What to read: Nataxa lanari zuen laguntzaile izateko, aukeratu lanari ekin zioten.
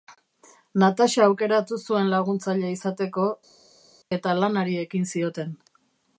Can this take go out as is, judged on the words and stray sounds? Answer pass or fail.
fail